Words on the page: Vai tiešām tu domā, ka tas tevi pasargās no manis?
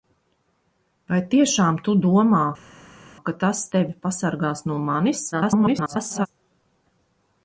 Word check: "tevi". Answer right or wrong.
right